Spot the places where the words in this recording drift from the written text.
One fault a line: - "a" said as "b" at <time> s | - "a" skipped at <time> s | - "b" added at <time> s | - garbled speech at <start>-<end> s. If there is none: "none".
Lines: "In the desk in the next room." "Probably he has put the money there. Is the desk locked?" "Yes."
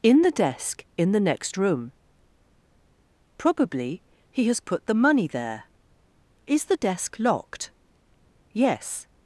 none